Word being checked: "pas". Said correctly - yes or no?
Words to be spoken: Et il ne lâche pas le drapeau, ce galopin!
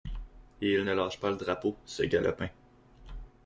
yes